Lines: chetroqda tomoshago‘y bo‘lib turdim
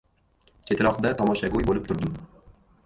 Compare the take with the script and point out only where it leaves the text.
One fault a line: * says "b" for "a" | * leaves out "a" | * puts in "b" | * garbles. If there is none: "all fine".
all fine